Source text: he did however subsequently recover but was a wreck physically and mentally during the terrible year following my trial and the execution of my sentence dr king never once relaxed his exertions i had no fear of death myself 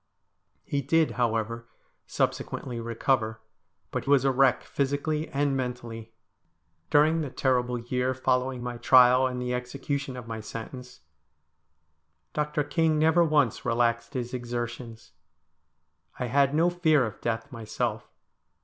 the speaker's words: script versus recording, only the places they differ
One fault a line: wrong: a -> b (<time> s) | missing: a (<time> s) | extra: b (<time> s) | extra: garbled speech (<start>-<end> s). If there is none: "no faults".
no faults